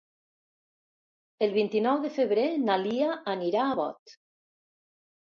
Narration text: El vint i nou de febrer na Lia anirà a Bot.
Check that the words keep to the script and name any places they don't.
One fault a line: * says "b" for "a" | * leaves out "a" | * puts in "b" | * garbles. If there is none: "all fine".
all fine